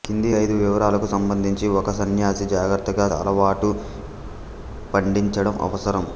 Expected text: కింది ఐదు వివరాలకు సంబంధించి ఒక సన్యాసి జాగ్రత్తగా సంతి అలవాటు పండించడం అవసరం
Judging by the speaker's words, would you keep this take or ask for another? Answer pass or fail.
fail